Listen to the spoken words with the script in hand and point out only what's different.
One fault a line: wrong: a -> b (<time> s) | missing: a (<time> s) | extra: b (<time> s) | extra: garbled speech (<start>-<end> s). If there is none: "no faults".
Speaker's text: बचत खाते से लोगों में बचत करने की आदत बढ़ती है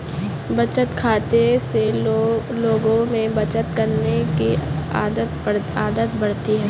no faults